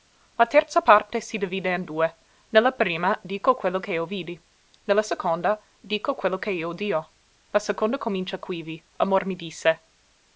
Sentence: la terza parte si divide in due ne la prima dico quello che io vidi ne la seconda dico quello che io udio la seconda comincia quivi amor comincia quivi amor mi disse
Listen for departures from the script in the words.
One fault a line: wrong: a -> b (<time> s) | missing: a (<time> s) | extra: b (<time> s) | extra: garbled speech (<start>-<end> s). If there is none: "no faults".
missing: comincia quivi amor (9.3 s)